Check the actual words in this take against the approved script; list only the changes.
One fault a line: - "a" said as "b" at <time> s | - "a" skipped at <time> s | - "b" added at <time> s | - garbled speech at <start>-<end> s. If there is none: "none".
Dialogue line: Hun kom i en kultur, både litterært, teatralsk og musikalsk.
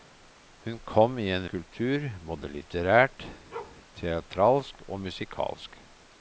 none